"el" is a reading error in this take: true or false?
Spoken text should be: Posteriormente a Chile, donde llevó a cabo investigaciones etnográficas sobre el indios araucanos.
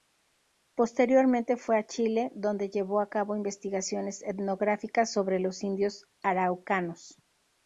true